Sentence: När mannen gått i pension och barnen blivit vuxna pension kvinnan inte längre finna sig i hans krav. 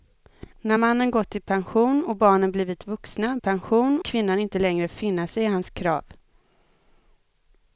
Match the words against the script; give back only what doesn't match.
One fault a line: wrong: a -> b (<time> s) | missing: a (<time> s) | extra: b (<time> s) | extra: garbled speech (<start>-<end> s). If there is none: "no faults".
no faults